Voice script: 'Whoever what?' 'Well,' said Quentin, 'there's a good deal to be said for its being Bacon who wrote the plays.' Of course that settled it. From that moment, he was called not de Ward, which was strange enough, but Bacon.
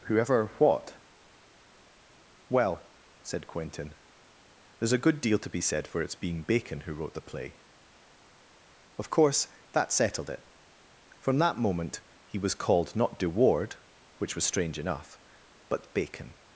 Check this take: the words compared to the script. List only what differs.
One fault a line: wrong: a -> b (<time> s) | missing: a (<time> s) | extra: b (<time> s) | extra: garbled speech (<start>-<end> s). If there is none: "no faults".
wrong: plays -> play (7.2 s)